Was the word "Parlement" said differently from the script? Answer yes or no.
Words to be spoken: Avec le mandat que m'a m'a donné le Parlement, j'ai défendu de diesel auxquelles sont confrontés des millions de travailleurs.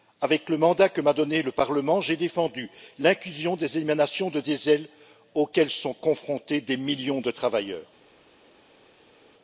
no